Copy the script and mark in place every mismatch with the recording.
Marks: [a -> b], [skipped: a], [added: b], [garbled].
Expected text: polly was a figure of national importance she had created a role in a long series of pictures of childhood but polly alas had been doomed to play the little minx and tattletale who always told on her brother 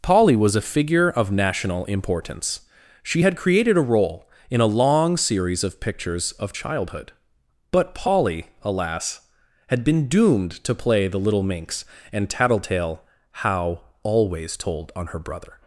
polly was a figure of national importance she had created a role in a long series of pictures of childhood but polly alas had been doomed to play the little minx and tattletale [who -> how] always told on her brother